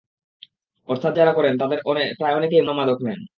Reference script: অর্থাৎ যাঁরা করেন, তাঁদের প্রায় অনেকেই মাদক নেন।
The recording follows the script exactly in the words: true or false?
true